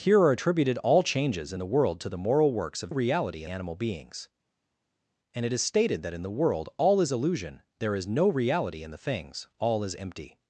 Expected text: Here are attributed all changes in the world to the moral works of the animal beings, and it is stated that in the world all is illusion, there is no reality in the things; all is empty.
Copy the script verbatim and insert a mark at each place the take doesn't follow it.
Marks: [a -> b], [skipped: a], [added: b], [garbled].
Here are attributed all changes in the world to the moral works of [the -> reality] animal beings, and it is stated that in the world all is illusion, there is no reality in the things; all is empty.